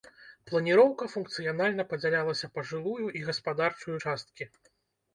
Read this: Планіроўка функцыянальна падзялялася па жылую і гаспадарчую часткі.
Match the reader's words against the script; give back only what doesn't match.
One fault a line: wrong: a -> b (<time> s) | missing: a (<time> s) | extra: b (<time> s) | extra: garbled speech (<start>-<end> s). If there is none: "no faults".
no faults